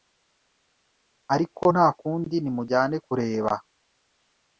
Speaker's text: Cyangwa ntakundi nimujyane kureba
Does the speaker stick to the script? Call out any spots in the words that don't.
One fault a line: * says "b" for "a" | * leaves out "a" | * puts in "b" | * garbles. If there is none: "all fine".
* says "Ariko" for "Cyangwa"